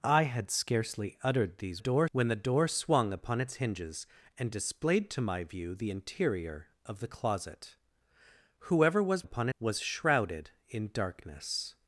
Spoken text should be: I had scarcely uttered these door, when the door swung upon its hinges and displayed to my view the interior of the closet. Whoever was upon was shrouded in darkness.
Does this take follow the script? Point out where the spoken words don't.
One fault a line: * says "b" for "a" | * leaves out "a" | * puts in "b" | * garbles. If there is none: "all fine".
all fine